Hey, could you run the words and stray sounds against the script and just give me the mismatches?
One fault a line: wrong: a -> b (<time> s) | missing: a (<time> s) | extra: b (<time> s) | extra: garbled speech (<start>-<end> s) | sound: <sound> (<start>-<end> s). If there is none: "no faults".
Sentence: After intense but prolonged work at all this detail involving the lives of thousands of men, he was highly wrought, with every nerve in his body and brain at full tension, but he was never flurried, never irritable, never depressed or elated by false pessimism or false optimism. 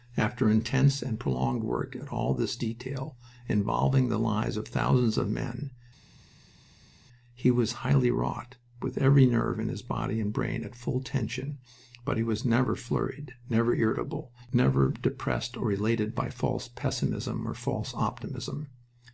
wrong: but -> and (1.0 s)